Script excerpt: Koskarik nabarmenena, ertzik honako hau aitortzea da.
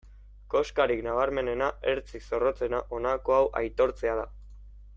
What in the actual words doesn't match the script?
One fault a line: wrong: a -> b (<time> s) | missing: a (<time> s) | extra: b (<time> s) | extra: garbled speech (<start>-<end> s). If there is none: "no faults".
extra: zorrotzena (2.3 s)